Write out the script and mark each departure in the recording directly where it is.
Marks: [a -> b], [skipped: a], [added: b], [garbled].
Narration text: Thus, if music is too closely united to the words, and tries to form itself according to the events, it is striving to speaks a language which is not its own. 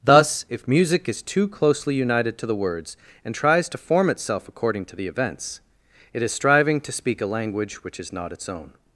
Thus, if music is too closely united to the words, and tries to form itself according to the events, it is striving to [speaks -> speak] a language which is not its own.